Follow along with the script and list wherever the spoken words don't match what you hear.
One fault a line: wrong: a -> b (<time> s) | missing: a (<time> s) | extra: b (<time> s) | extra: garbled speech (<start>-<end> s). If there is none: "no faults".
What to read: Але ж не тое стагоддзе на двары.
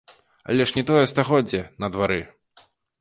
no faults